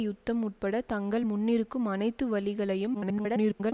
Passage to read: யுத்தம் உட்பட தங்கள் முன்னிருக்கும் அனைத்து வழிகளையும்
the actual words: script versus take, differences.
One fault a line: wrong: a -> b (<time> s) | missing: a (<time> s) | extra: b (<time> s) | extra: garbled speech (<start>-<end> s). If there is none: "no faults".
extra: garbled speech (2.9-3.7 s)